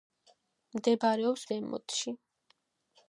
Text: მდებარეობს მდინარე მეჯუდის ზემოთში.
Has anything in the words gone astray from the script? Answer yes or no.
yes